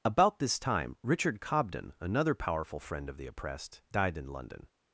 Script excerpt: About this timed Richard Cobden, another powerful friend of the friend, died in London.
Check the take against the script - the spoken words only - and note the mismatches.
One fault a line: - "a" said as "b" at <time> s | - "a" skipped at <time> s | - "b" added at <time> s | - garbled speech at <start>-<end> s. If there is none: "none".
- "timed" said as "time" at 0.6 s
- "friend" said as "oppressed" at 3.3 s